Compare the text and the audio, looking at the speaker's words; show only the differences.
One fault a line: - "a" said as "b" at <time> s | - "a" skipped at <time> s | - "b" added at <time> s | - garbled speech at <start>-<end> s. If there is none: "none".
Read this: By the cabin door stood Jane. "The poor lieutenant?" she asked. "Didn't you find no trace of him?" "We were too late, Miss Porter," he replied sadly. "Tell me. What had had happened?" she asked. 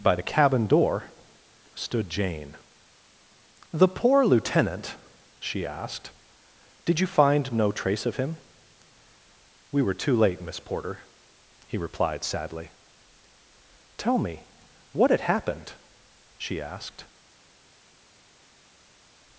- "Didn't" said as "Did" at 6.8 s
- "had" skipped at 15.2 s